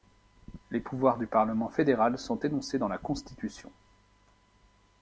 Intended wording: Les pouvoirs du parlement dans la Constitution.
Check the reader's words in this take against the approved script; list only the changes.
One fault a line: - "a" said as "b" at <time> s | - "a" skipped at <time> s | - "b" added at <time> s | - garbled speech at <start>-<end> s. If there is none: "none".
- "fédéral sont énoncés" added at 1.7 s